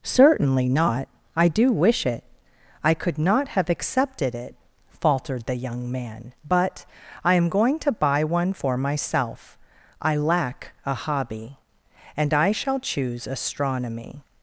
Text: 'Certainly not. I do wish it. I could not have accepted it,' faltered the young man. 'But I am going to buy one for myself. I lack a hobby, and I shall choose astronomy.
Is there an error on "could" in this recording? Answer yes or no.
no